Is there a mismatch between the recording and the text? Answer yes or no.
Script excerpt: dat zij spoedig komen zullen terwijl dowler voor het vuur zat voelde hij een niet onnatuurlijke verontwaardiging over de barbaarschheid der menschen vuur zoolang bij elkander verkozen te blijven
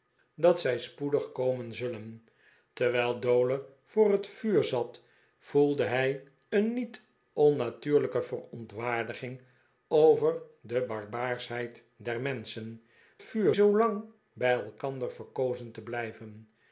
no